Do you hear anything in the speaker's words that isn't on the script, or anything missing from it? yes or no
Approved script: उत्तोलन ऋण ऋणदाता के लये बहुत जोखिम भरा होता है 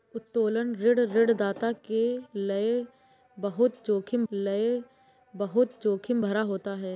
yes